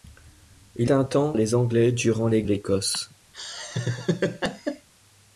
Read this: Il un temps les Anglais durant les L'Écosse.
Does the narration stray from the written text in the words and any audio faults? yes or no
yes